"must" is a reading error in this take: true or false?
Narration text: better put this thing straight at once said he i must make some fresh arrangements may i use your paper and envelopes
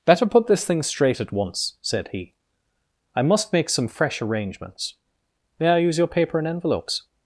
false